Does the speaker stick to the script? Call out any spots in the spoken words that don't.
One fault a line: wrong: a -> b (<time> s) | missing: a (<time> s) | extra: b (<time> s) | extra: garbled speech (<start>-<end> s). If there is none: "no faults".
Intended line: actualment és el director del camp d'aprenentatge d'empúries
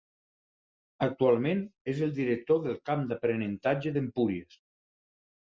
no faults